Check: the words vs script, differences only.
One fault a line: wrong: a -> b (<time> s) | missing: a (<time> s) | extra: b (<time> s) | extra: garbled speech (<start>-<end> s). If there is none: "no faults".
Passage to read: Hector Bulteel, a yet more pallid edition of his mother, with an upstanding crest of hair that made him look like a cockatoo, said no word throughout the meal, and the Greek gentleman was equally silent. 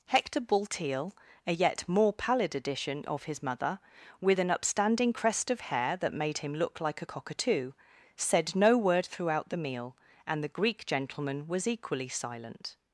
no faults